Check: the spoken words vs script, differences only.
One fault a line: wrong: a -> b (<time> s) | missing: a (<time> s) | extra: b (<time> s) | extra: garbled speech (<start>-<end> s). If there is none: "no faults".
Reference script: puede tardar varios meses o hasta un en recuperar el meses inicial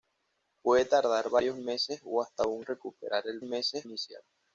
no faults